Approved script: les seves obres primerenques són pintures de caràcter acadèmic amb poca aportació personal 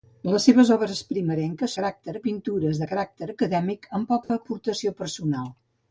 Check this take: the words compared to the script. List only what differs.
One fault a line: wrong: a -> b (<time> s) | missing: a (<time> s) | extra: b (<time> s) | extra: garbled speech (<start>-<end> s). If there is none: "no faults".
wrong: són -> caràcter (1.8 s)